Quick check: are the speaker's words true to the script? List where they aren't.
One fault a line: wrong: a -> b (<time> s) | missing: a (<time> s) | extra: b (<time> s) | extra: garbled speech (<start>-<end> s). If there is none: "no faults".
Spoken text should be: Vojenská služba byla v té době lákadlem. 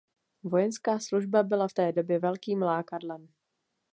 extra: velkým (2.2 s)